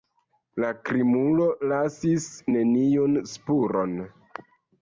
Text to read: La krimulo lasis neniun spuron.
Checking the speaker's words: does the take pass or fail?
pass